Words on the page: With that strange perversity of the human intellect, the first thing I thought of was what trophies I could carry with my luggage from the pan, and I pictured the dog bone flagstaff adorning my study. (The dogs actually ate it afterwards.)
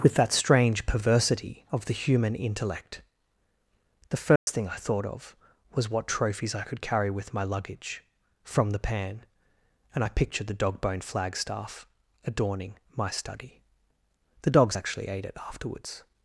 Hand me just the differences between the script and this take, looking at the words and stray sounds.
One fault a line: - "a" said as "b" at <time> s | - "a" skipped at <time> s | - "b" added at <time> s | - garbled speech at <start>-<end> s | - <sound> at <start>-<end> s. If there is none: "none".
- dropout at 4.4-4.5 s